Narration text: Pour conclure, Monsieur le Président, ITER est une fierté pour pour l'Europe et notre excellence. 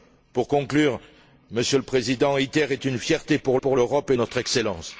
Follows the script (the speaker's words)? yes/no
yes